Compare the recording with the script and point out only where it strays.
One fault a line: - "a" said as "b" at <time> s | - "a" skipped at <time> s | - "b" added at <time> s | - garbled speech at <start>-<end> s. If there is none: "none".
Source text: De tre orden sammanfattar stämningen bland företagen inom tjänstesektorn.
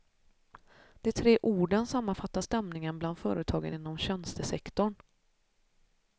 none